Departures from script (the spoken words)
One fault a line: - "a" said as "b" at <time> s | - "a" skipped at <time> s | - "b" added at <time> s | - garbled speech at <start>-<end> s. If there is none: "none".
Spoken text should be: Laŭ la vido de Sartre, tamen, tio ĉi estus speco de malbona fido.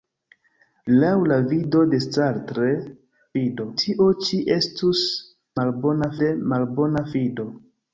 - "tamen" said as "fido" at 3.4 s
- "speco" said as "malbona" at 5.6 s